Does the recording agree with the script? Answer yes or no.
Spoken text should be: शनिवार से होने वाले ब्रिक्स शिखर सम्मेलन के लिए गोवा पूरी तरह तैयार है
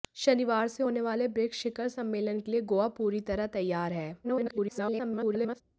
no